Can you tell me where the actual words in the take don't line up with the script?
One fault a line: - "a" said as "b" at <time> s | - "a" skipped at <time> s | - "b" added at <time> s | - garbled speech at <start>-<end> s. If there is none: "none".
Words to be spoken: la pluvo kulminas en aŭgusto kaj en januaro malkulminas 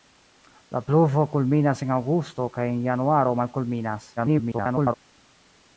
- garbled speech at 4.2-4.9 s